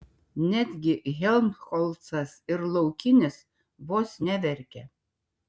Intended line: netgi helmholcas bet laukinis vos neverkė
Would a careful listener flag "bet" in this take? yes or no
yes